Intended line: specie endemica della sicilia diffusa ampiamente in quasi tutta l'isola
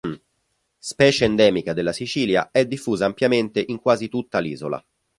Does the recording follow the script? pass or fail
fail